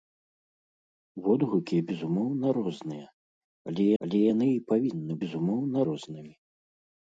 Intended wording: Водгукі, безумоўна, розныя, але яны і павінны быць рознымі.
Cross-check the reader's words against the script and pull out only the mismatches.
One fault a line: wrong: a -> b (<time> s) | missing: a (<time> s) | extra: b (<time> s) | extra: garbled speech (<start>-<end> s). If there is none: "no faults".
extra: але (4.0 s)
wrong: быць -> безумоўна (5.2 s)